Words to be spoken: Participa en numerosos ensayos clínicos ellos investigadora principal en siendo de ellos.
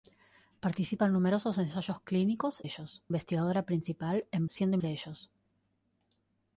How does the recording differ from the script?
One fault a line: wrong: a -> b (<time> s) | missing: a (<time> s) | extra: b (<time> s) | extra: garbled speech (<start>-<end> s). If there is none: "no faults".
no faults